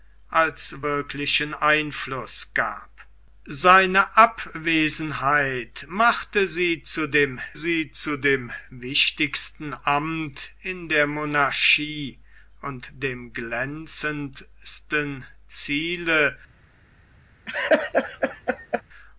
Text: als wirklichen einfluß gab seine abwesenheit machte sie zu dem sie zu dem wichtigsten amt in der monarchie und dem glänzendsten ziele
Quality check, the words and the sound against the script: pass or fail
fail